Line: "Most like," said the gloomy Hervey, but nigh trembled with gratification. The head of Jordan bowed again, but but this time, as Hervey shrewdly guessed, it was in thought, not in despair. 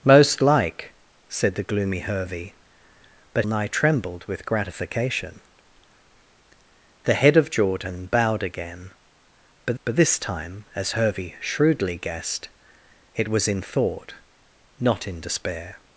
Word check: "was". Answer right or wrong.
right